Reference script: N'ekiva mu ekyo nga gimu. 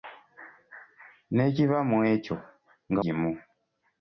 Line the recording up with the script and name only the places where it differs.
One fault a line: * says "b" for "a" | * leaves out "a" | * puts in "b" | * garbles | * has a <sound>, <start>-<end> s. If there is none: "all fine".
all fine